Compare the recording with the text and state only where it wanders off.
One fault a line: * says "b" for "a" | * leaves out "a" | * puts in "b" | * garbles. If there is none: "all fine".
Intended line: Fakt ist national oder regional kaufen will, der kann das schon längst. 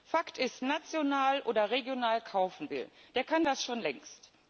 all fine